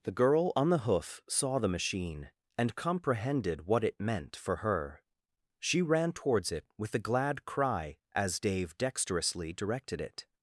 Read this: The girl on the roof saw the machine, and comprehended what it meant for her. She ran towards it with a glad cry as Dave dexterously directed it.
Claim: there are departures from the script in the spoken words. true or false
true